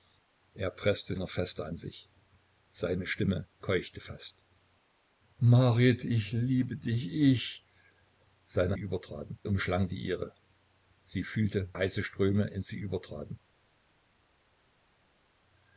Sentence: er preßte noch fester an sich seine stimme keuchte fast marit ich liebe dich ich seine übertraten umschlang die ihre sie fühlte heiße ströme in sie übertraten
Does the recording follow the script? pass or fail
pass